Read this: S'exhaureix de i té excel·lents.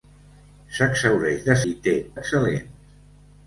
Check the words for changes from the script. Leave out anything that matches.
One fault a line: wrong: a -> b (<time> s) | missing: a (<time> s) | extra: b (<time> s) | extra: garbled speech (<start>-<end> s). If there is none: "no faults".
no faults